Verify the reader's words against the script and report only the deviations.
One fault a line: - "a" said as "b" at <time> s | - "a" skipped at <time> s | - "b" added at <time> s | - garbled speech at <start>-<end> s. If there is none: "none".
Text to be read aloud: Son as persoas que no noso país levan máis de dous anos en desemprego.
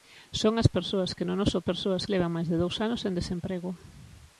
- "país" said as "persoas" at 1.7 s